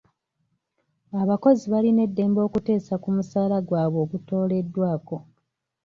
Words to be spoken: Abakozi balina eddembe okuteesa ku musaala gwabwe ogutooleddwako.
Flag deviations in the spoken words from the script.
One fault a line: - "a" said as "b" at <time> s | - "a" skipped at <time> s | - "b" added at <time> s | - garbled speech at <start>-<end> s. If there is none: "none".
none